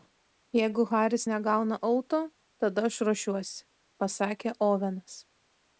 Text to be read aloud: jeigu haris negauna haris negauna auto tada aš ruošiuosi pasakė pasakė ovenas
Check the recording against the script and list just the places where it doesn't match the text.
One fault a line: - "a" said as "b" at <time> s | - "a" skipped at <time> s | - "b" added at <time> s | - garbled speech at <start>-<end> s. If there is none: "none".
- "haris negauna" skipped at 1.8 s
- "pasakė" skipped at 4.6 s